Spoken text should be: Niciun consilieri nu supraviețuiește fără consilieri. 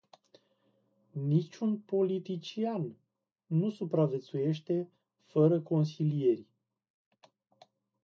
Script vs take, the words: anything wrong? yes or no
yes